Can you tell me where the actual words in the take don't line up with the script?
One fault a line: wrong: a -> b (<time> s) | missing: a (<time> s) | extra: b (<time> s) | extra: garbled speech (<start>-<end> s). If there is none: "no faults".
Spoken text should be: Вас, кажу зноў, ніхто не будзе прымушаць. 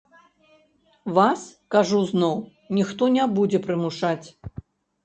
no faults